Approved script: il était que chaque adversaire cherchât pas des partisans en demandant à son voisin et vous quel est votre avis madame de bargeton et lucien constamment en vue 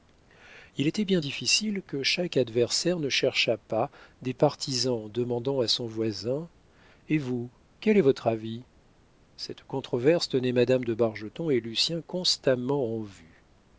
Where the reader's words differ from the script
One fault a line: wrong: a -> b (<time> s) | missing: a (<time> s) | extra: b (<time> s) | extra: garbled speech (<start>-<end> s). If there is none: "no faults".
extra: bien difficile (1.1 s)
extra: ne (3.0 s)
extra: cette controverse tenait (9.4 s)